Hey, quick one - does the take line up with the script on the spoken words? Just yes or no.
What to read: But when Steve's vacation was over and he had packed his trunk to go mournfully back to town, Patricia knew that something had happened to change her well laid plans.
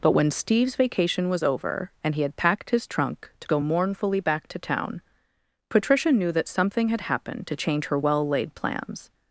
yes